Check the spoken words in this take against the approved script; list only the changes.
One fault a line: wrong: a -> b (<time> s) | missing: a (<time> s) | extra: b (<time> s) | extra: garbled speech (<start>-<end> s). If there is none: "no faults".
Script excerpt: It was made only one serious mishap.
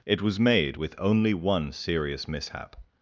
extra: with (0.7 s)